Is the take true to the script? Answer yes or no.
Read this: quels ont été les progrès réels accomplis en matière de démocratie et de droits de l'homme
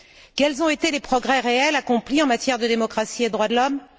yes